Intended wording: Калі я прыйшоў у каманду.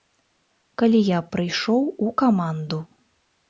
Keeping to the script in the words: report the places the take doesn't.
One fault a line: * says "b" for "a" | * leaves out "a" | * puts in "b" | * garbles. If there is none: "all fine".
all fine